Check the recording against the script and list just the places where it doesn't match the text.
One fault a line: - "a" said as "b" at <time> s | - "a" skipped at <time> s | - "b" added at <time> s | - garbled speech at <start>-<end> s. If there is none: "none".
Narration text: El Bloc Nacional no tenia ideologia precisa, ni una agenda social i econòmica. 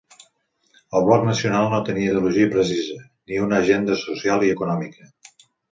none